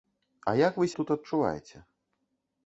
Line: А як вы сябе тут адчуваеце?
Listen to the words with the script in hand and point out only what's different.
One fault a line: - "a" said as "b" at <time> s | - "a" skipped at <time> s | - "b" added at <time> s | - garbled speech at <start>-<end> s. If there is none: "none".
- "сябе" skipped at 0.9 s